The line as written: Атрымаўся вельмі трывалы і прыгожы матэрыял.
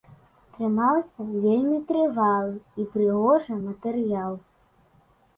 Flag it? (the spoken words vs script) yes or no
no